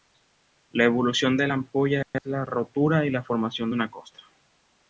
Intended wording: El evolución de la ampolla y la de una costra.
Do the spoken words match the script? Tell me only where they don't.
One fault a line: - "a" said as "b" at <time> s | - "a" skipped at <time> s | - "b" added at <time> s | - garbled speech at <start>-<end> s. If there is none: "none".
- "El" said as "La" at 0.7 s
- "es la rotura" added at 2.1 s
- "formación" added at 3.2 s